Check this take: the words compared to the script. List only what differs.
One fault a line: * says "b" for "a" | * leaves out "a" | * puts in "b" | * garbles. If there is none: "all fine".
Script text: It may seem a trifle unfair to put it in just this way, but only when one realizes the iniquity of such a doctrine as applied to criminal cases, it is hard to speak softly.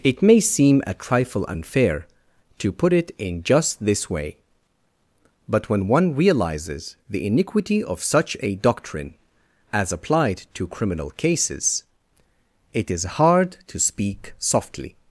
* leaves out "only"